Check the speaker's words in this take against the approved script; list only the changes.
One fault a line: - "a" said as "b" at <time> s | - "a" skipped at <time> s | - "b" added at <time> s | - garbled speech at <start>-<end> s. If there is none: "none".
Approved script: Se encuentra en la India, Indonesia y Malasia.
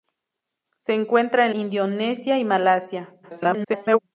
- "la India" skipped at 1.6 s
- garbled speech at 3.2-4.0 s